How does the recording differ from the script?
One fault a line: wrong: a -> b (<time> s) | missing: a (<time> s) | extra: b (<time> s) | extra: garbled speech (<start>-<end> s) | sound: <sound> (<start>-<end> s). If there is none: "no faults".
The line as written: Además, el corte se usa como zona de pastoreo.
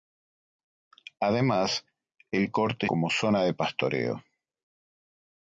missing: se usa (2.9 s)